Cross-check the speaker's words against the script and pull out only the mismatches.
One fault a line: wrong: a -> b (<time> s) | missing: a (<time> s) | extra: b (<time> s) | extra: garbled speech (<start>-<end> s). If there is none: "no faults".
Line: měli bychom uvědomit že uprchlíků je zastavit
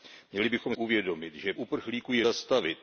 no faults